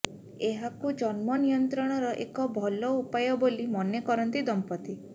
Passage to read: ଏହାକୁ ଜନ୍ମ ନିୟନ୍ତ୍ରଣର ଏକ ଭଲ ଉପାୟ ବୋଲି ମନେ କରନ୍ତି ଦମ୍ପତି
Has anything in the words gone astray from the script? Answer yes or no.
no